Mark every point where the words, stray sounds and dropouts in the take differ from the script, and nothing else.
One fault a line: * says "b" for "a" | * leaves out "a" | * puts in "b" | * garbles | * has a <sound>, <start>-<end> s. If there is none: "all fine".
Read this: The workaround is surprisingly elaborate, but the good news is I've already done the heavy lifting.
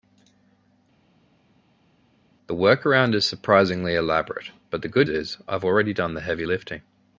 * leaves out "news"